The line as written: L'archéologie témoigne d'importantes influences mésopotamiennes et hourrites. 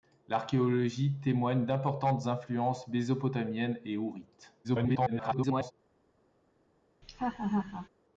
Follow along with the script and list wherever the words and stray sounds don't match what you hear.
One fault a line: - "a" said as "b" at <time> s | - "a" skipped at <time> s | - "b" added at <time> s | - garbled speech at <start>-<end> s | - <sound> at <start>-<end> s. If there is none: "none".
- garbled speech at 4.6-5.7 s
- laugh at 7.0-7.9 s